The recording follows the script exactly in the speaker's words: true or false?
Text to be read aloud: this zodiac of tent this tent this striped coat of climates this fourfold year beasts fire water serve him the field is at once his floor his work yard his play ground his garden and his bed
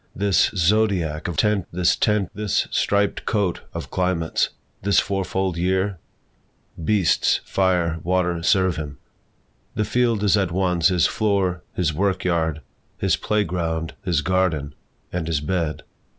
true